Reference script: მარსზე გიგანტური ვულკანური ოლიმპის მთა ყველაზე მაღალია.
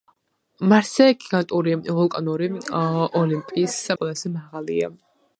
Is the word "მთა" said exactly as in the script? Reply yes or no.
no